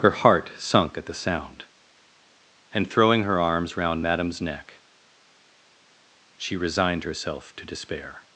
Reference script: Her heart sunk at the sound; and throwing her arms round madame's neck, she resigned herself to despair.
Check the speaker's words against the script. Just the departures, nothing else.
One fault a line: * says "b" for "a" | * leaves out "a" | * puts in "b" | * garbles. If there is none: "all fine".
all fine